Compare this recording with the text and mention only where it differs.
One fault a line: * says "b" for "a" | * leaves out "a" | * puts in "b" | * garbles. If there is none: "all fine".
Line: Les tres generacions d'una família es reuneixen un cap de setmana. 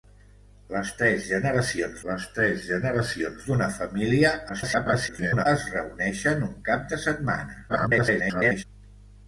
* puts in "les tres generacions"
* garbles
* garbles